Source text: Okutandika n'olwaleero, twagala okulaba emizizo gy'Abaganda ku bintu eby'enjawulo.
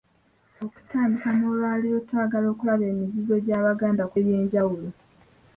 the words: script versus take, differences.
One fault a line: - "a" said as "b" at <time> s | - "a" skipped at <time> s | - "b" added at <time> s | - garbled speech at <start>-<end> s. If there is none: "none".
- "bintu" skipped at 4.2 s